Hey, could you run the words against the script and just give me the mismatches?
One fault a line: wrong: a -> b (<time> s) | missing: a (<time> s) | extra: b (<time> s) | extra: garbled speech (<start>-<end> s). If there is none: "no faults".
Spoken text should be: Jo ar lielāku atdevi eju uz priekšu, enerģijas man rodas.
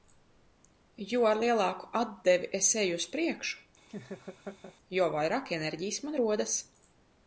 extra: es (2.6 s)
extra: jo vairāk (5.0 s)